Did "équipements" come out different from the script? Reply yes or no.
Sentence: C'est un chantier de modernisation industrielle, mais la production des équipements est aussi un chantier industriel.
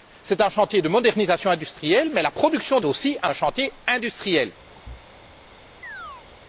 yes